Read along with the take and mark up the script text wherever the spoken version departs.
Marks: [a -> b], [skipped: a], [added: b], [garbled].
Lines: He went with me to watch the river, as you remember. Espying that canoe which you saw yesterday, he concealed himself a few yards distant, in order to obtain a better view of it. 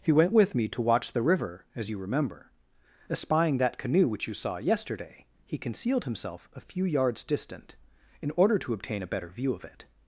He went with me to watch the river, as you remember. Espying that canoe which you saw yesterday, he concealed himself a few yards distant, in order to obtain a better view of it.